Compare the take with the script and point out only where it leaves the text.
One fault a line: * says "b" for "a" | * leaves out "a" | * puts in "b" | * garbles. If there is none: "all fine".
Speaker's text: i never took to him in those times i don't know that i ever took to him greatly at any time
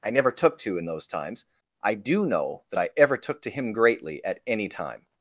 * leaves out "him"
* says "do" for "don't"